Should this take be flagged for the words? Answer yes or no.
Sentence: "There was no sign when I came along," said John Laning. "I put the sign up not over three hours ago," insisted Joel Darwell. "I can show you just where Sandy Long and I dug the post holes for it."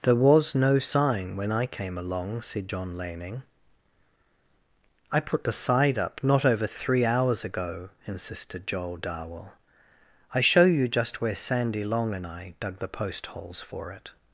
yes